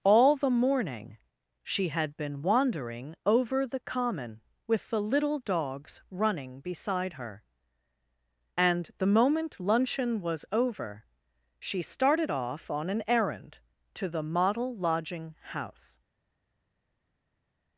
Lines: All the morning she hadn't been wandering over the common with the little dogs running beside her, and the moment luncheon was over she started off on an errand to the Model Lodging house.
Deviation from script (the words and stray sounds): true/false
true